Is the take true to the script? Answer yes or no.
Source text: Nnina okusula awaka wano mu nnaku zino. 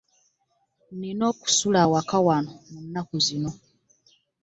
yes